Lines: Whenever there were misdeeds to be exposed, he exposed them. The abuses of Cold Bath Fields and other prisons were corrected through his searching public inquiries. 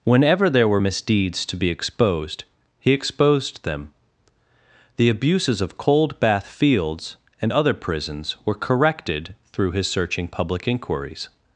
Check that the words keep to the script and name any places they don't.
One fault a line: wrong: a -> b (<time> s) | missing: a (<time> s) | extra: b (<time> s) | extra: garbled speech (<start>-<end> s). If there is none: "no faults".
no faults